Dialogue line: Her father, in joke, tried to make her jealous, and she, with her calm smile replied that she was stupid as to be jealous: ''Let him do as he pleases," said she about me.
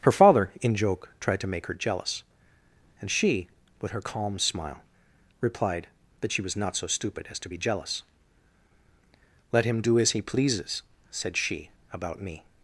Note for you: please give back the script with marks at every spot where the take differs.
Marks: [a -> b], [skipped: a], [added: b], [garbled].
Her father, in joke, tried to make her jealous, and she, with her calm smile replied that she was [added: not so] stupid as to be jealous: ''Let him do as he pleases," said she about me.